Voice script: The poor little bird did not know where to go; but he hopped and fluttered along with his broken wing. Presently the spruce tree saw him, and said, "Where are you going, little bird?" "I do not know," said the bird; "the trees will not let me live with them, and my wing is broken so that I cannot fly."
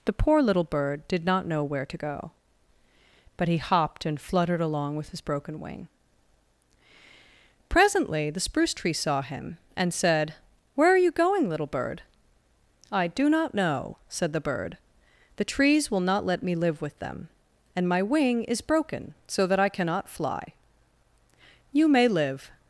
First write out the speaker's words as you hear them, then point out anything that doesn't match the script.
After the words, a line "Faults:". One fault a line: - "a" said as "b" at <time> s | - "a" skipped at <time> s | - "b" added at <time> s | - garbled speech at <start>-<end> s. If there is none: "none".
The poor little bird did not know where to go; but he hopped and fluttered along with his broken wing. Presently the spruce tree saw him, and said, "Where are you going, little bird?" "I do not know," said the bird; "the trees will not let me live with them, and my wing is broken so that I cannot fly." "You may live
Faults:
- "You may live" added at 21.7 s